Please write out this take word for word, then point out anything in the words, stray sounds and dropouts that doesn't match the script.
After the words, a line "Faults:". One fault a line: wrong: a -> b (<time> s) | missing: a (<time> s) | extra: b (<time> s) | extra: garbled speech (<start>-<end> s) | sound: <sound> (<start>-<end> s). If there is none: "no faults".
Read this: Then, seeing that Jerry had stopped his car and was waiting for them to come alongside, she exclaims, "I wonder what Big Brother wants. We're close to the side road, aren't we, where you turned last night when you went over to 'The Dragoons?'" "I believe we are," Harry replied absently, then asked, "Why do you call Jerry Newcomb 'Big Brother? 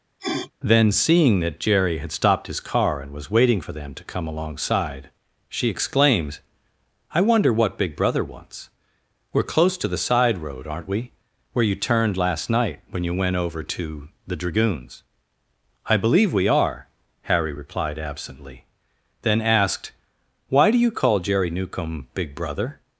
Then, seeing that Jerry had stopped his car and was waiting for them to come alongside, she exclaims, "I wonder what Big Brother wants. We're close to the side road, aren't we, where you turned last night when you went over to 'The Dragoons?'" "I believe we are," Harry replied absently, then asked, "Why do you call Jerry Newcomb 'Big Brother?
Faults:
sound: sniff (0.2-0.5 s)